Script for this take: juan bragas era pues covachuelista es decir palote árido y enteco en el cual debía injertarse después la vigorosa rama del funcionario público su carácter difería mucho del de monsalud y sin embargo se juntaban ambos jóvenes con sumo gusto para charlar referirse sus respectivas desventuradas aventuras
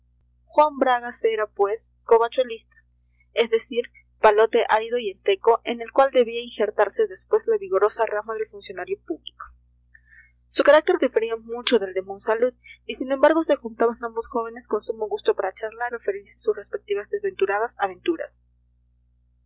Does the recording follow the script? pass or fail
pass